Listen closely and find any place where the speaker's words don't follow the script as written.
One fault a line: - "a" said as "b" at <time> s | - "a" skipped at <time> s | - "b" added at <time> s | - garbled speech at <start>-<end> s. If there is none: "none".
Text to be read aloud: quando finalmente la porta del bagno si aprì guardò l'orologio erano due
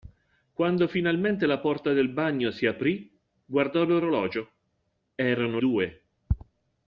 none